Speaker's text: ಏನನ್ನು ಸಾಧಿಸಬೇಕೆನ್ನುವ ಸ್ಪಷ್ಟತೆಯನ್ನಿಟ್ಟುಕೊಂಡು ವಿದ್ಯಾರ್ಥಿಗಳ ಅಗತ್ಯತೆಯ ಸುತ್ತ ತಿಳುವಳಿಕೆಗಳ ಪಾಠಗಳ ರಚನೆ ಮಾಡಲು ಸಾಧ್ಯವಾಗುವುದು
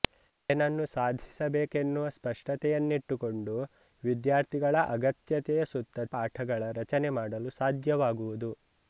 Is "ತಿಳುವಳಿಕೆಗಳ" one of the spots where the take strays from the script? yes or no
yes